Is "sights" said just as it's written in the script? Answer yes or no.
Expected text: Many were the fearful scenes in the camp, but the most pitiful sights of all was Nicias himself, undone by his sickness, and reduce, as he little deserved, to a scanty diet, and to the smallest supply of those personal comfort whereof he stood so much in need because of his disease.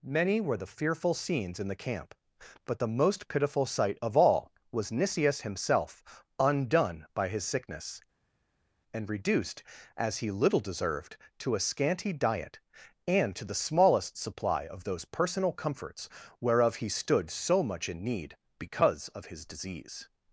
no